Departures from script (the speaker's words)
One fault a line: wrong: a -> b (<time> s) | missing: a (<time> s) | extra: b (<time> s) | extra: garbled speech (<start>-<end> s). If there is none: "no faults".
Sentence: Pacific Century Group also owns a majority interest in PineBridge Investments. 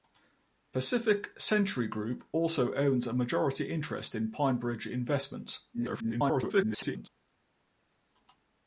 extra: garbled speech (5.7-7.1 s)